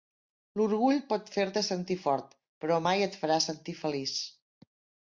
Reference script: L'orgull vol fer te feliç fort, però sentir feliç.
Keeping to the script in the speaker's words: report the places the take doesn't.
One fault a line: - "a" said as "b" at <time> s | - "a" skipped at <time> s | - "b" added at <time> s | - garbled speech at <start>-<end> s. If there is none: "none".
- "vol" said as "pot" at 1.1 s
- "feliç" said as "sentir" at 1.7 s
- "mai et farà" added at 2.9 s